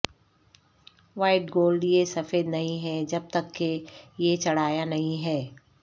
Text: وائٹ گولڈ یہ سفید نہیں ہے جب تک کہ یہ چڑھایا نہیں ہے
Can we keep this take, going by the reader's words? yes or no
yes